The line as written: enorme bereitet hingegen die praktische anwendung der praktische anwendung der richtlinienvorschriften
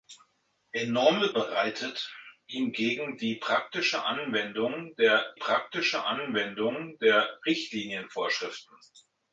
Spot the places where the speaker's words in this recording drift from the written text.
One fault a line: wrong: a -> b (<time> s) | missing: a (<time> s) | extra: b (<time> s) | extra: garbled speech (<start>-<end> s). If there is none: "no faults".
no faults